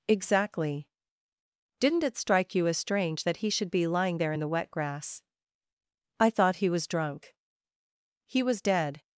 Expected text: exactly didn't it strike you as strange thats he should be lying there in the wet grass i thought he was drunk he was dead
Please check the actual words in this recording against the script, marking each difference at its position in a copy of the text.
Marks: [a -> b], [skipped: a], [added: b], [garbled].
exactly didn't it strike you as strange [thats -> that] he should be lying there in the wet grass i thought he was drunk he was dead